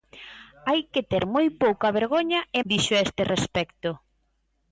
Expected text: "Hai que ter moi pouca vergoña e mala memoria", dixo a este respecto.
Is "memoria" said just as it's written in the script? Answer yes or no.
no